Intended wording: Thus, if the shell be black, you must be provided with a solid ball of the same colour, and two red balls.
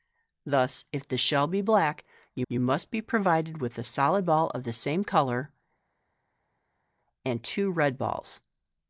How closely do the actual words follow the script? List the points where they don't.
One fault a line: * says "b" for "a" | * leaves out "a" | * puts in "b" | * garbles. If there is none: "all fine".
* puts in "you"